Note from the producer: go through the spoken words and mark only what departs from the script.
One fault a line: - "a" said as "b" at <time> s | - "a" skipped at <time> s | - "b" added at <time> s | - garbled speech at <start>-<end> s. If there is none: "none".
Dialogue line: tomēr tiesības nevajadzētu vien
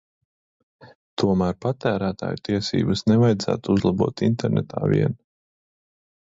- "patērētāju" added at 1.6 s
- "uzlabot internetā" added at 3.8 s